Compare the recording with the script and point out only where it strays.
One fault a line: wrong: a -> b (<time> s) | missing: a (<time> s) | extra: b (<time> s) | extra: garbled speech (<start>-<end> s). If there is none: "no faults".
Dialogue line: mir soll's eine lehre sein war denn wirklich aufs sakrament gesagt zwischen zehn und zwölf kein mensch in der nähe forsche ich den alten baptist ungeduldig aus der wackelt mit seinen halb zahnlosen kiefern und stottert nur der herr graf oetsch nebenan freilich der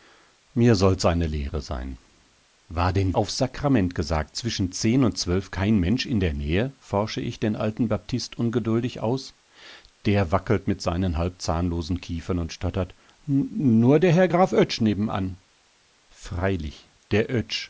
missing: wirklich (3.1 s)